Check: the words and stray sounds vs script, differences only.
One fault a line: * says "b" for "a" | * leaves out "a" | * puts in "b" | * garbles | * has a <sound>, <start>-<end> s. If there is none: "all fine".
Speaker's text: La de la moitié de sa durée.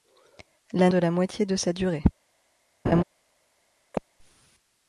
* has a laugh, 2.9-3.0 s
* has a chirp, 3.9-4.0 s